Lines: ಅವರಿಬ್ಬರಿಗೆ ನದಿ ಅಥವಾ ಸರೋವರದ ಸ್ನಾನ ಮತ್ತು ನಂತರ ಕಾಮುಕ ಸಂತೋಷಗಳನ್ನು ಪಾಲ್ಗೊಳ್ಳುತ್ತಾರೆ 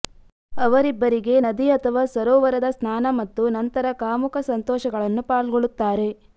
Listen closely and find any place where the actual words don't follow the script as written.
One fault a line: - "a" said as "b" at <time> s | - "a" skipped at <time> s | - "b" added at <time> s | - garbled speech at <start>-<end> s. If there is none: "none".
none